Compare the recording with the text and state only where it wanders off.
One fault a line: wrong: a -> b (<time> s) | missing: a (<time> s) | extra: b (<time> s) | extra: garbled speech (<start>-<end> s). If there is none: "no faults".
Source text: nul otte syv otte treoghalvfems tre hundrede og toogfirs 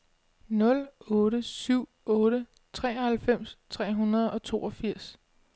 no faults